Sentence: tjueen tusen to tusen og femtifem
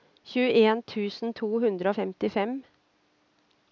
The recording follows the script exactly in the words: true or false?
false